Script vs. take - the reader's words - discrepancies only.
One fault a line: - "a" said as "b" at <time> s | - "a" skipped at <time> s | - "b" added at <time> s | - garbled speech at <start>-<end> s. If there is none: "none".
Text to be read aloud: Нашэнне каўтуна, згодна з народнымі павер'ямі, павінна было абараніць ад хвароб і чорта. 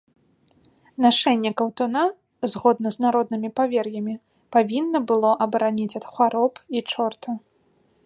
none